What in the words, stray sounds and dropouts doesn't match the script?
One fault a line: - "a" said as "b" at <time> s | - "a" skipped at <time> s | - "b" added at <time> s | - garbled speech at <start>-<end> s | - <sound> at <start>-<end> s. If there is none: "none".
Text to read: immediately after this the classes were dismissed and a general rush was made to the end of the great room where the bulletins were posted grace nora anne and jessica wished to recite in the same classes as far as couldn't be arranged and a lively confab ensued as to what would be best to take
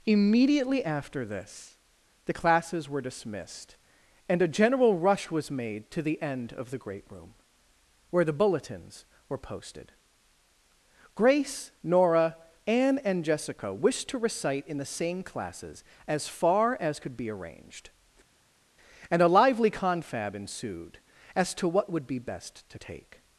- "couldn't" said as "could" at 17.0 s